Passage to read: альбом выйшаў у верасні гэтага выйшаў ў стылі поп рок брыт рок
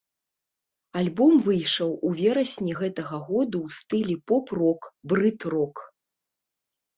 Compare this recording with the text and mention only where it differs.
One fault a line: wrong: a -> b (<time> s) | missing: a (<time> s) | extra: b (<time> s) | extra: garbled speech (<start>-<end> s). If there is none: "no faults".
wrong: выйшаў -> году (3.3 s)